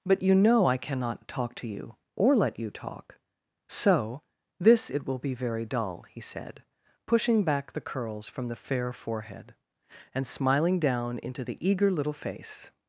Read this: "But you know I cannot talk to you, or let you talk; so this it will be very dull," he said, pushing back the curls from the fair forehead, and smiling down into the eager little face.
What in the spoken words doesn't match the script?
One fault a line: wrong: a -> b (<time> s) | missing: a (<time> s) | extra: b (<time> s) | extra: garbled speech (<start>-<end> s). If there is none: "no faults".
no faults